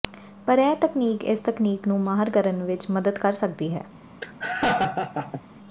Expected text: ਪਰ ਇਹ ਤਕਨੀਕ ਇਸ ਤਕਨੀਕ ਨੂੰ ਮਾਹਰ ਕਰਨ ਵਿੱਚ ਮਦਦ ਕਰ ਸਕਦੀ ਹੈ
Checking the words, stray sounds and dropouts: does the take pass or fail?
fail